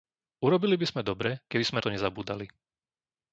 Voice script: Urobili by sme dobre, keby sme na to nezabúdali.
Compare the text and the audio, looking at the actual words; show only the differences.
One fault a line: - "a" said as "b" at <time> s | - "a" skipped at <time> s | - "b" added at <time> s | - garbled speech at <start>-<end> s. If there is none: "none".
- "na" skipped at 1.8 s